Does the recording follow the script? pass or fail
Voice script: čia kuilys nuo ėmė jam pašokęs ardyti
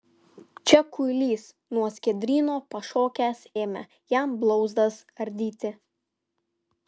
fail